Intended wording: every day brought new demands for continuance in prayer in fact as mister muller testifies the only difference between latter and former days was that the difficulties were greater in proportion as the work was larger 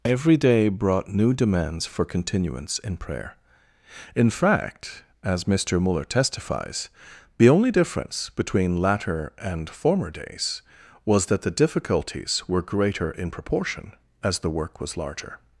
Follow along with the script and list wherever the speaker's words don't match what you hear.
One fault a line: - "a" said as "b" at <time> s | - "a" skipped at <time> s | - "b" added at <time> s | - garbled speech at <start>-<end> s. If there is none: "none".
none